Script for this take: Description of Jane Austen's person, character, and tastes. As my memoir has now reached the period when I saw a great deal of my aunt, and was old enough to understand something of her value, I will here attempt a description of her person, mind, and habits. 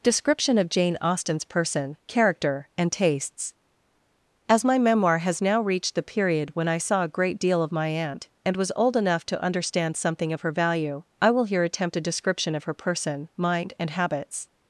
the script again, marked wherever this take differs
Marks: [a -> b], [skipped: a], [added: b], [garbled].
Description of Jane Austen's person, character, and tastes. As my memoir has now reached the period when I saw a great deal of my aunt, and was old enough to understand something of her value, I will here attempt a description of her person, mind, and habits.